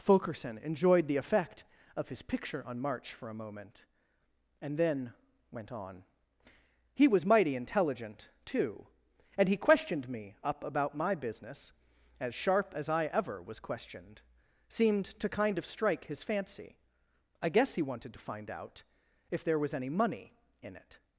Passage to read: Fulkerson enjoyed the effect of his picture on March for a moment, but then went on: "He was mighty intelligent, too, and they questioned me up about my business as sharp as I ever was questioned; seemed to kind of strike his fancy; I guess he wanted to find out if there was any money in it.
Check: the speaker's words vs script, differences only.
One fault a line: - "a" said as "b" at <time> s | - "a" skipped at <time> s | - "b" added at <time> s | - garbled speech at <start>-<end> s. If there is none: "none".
- "but" said as "and" at 4.6 s
- "they" said as "he" at 9.5 s